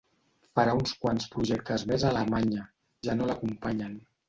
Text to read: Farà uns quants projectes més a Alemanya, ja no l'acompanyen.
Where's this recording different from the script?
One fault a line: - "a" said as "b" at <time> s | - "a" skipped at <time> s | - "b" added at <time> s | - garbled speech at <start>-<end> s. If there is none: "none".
none